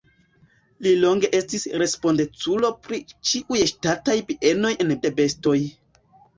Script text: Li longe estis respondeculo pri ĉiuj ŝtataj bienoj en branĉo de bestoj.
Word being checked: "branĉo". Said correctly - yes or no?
no